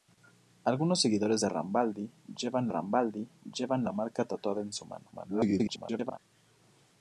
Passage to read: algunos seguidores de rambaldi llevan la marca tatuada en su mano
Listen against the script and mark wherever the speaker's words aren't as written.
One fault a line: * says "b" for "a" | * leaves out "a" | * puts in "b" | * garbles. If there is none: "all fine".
* puts in "rambaldi llevan"
* garbles